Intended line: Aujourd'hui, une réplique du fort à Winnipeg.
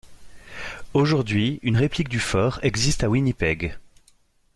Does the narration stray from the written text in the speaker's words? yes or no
yes